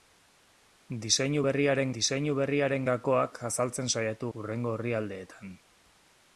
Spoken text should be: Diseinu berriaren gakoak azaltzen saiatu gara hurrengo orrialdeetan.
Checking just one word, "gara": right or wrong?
wrong